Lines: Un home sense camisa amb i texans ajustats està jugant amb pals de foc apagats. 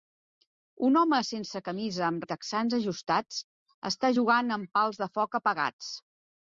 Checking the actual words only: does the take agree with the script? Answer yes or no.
yes